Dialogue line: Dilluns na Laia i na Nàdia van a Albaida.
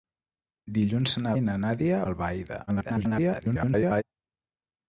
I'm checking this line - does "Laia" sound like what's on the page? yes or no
no